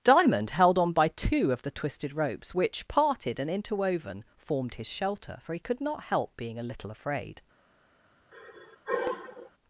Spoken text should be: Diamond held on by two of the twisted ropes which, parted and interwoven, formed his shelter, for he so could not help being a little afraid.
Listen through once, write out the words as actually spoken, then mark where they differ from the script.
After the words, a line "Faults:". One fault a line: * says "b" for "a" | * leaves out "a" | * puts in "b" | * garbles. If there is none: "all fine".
Diamond held on by two of the twisted ropes which, parted and interwoven, formed his shelter, for he could not help being a little afraid.
Faults:
* leaves out "so"